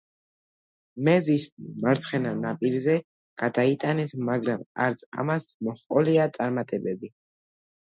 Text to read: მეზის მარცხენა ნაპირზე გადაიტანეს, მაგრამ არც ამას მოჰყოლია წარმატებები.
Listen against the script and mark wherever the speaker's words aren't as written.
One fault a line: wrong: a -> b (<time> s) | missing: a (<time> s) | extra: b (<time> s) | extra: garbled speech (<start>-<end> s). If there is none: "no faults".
no faults